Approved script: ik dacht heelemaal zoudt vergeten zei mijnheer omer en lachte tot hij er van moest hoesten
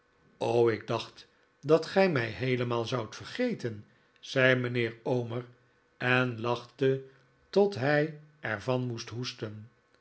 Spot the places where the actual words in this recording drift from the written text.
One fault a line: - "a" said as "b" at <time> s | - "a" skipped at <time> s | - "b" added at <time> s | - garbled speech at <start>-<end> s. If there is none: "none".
- "dat gij mij" added at 1.6 s